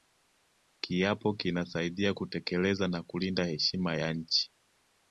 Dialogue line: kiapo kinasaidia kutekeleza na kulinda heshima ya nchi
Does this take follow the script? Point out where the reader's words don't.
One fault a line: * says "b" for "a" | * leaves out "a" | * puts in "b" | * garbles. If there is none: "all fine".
all fine